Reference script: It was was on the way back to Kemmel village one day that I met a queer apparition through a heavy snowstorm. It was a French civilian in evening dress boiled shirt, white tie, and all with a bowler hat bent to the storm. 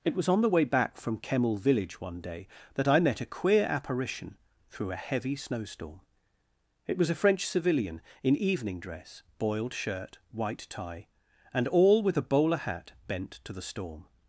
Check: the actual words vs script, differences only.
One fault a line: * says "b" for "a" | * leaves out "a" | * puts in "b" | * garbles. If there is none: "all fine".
* leaves out "was"
* says "from" for "to"